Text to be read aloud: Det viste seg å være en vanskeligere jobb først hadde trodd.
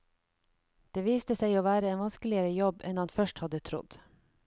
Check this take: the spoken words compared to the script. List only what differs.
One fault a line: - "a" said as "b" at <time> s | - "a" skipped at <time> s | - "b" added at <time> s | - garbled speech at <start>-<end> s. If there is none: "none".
- "enn han" added at 2.9 s